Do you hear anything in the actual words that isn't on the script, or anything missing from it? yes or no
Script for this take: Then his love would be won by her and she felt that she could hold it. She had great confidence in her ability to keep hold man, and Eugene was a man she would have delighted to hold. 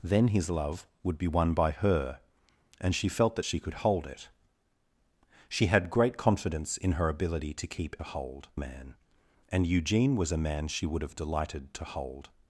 no